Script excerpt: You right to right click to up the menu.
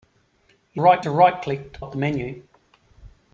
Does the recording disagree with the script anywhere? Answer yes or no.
no